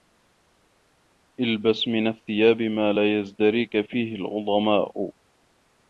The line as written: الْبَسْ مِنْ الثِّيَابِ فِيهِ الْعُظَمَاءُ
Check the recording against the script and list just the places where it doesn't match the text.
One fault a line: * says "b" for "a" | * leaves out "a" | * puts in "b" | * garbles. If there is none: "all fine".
* puts in "مَا لَا يَزْدَرِيك"